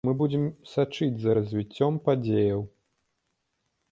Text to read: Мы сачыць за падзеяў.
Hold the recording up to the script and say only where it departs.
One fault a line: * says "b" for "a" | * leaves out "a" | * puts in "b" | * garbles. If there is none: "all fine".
* puts in "будзем"
* puts in "развіццём"